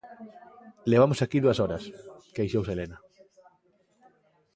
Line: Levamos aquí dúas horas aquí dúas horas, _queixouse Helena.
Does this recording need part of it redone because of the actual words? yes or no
yes